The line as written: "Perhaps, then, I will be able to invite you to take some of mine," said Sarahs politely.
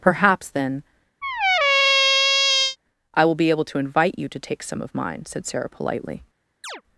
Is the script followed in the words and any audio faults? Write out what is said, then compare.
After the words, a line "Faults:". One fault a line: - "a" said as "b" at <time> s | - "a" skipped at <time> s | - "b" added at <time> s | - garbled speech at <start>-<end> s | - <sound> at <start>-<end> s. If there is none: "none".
"Perhaps, then, I will be able to invite you to take some of mine," said Sarah politely.
Faults:
- squeak at 1.2-2.8 s
- "Sarahs" said as "Sarah" at 5.5 s
- chirp at 6.6-6.8 s